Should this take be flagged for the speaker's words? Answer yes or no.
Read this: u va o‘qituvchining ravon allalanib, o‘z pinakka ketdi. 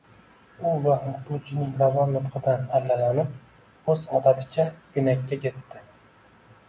yes